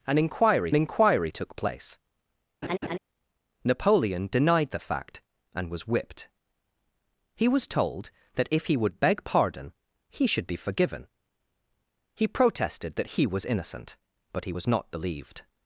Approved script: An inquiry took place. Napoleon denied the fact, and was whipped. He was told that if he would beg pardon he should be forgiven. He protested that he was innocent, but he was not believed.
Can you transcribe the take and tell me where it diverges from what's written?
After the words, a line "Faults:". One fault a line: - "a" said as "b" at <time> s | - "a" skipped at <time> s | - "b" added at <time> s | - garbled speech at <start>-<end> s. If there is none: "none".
An inquiry inquiry took place. Napoleon denied the fact, and was whipped. He was told that if he would beg pardon he should be forgiven. He protested that he was innocent, but he was not believed.
Faults:
- "inquiry" added at 0.7 s